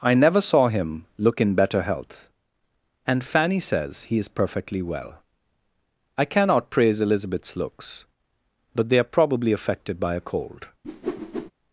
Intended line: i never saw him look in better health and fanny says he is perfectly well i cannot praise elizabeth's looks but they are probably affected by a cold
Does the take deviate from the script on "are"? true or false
false